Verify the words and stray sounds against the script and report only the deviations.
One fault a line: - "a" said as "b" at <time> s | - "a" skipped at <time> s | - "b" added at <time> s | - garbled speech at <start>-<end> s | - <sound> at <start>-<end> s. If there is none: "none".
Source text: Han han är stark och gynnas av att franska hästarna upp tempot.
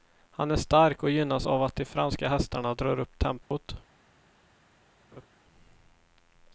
- "han" skipped at 0.5 s
- "de" added at 1.7 s
- "drar" added at 2.7 s
- dropout at 3.4-3.5 s
- laugh at 5.1-5.3 s